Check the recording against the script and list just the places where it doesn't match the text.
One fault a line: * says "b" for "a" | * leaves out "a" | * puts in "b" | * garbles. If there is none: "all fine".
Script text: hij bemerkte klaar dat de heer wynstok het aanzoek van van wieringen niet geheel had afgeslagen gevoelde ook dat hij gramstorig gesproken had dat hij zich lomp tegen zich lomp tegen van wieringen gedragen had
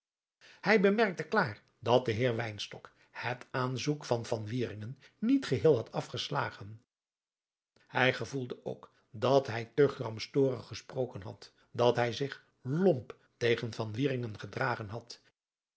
* puts in "hij"
* puts in "te"
* leaves out "zich lomp tegen"